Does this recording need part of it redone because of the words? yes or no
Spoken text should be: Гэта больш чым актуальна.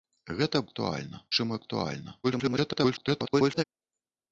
yes